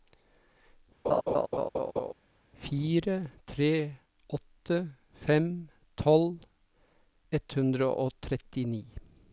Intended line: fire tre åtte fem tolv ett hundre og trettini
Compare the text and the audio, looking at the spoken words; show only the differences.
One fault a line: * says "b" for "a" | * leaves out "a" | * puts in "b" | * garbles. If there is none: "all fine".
all fine